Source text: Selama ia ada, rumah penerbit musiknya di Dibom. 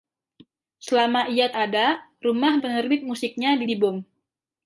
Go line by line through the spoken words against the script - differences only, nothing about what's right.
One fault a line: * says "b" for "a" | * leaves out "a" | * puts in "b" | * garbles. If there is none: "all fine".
all fine